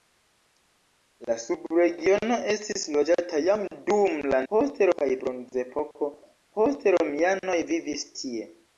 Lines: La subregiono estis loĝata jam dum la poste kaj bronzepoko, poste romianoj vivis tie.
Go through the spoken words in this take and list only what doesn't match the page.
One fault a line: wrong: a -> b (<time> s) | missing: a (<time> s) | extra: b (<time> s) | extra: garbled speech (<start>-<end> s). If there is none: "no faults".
no faults